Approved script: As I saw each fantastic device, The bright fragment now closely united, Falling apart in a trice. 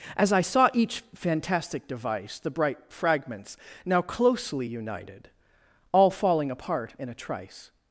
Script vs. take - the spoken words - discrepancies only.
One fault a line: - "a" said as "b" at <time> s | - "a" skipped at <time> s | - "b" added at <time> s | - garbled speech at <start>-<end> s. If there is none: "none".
- "fragment" said as "fragments" at 2.9 s
- "All" added at 5.9 s